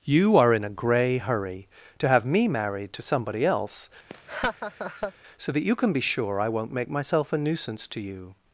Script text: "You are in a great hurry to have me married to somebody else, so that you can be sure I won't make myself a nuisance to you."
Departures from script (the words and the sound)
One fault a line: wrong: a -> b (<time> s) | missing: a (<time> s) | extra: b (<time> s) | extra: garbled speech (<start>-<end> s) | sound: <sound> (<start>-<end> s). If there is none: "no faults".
wrong: great -> grey (0.7 s)
sound: laugh (4.1-5.1 s)